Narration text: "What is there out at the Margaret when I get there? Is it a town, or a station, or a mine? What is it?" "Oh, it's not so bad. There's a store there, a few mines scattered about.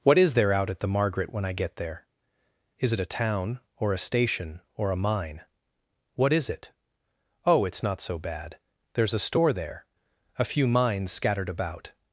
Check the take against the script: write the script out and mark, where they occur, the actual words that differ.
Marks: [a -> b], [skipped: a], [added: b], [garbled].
"What is there out at the Margaret when I get there? Is it a town, or a station, or a mine? What is it?" "Oh, it's not so bad. There's a store there, a few mines scattered about.